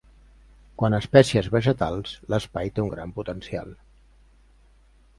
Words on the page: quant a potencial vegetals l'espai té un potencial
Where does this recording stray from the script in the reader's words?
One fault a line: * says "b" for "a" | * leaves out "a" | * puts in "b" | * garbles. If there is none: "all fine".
* says "espècies" for "potencial"
* puts in "gran"